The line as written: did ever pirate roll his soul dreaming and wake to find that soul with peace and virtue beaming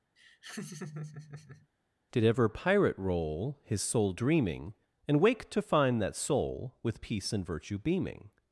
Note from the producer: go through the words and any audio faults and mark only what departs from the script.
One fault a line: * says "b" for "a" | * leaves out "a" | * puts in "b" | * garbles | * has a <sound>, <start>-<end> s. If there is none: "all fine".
* has a laugh, 0.2-1.7 s